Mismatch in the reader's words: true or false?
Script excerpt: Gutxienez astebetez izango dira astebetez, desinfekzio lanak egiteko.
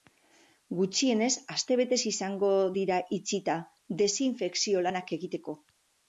true